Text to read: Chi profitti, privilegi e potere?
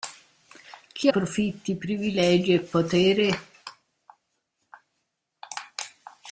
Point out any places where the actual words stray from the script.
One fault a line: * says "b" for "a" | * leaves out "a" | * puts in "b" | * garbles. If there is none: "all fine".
all fine